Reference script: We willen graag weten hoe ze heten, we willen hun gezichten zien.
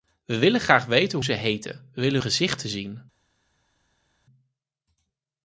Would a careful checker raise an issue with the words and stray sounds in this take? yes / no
yes